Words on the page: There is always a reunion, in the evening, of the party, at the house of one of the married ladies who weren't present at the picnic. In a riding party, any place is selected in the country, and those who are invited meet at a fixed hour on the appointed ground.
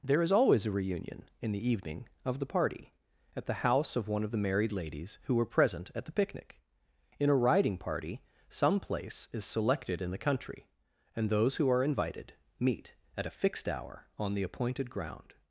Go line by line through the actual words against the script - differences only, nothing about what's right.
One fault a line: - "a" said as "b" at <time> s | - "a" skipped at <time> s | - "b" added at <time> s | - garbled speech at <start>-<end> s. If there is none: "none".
- "weren't" said as "were" at 5.3 s
- "any" said as "some" at 8.5 s